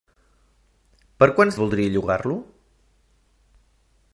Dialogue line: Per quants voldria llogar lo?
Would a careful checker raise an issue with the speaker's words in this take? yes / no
no